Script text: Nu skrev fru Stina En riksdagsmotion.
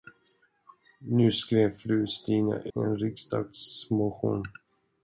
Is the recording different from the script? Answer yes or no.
no